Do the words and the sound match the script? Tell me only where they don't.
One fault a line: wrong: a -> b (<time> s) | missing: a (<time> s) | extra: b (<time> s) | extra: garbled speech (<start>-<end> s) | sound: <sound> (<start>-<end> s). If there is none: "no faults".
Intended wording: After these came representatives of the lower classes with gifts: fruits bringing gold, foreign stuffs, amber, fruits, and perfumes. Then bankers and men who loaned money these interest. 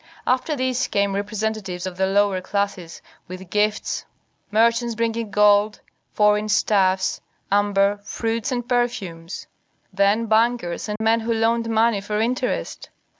wrong: fruits -> merchants (4.5 s)
sound: dropout (11.0-11.0 s)
wrong: these -> for (12.0 s)